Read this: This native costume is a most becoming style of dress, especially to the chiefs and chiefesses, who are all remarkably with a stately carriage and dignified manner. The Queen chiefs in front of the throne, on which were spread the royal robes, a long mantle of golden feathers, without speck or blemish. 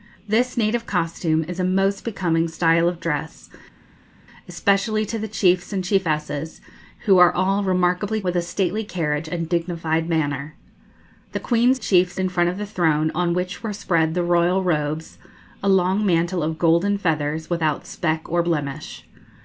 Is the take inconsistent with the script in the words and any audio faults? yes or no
no